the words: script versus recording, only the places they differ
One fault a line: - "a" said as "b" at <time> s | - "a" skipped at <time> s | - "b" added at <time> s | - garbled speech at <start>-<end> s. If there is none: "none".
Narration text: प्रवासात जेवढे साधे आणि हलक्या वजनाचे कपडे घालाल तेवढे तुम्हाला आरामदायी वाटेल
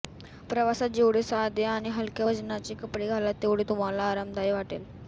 none